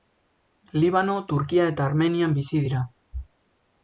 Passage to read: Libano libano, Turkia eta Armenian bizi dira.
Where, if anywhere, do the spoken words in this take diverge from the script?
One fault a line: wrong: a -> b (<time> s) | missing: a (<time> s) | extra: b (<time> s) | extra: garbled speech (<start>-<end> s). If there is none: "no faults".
missing: libano (1.2 s)